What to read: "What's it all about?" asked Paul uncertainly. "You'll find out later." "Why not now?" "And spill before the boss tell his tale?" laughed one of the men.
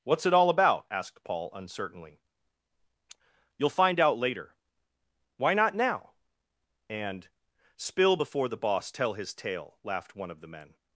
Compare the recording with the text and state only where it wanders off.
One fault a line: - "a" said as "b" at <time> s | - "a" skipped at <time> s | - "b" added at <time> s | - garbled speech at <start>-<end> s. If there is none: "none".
none